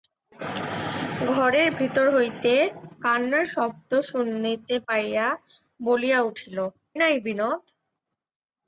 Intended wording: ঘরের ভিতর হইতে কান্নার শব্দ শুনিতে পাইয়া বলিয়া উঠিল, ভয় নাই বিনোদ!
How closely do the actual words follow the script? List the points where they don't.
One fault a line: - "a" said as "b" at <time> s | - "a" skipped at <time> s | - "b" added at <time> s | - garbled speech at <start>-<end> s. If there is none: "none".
- "ভয়" skipped at 6.6 s